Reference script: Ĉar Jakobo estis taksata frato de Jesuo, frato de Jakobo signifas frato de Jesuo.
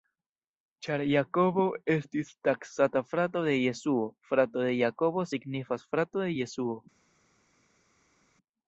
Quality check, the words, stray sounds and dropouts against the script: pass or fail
pass